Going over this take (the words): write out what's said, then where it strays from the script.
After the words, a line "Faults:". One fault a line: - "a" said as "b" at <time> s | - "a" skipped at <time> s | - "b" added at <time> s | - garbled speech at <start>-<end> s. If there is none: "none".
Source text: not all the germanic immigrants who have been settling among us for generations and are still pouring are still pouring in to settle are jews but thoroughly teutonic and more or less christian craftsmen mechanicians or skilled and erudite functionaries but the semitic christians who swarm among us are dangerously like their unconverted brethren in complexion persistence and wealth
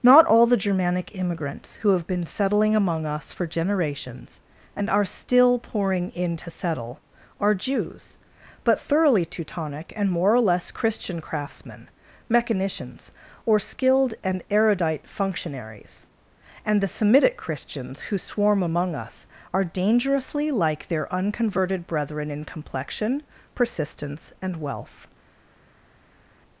not all the germanic immigrants who have been settling among us for generations and are still pouring in to settle are jews but thoroughly teutonic and more or less christian craftsmen mechanicians or skilled and erudite functionaries and the semitic christians who swarm among us are dangerously like their unconverted brethren in complexion persistence and wealth
Faults:
- "are still pouring" skipped at 6.1 s
- "but" said as "and" at 16.6 s